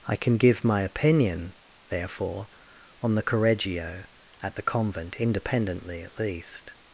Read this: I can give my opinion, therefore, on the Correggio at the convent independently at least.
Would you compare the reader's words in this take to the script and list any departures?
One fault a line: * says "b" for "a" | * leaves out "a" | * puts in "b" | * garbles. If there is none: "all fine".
all fine